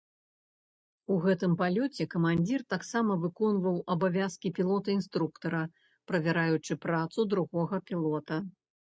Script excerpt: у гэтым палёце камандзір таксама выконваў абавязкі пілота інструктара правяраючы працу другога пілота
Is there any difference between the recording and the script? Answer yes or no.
no